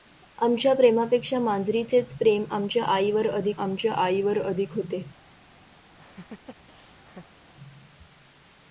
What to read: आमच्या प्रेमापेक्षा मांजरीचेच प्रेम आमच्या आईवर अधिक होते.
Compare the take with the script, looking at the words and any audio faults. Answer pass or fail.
fail